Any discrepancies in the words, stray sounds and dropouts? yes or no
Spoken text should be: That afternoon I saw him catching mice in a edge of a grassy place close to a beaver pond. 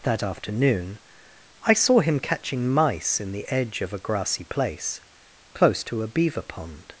yes